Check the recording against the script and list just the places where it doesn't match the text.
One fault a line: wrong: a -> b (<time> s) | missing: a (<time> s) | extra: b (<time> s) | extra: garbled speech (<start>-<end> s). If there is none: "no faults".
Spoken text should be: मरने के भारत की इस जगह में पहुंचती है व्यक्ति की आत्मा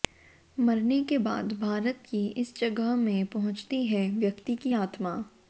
extra: बाद (1.2 s)